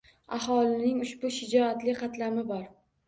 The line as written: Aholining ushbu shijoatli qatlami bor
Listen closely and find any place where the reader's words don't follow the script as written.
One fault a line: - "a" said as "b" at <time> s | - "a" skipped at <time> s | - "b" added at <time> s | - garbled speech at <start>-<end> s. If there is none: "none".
none